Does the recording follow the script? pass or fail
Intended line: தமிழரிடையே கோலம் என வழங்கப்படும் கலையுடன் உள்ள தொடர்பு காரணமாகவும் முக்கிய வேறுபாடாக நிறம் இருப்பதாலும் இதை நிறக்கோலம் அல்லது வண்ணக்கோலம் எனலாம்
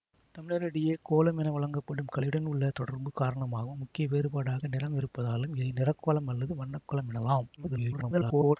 fail